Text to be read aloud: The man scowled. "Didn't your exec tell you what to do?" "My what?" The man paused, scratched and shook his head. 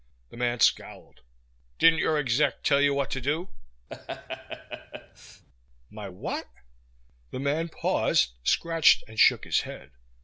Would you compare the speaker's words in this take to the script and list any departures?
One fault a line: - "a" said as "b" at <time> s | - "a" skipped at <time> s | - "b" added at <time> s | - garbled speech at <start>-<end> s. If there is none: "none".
none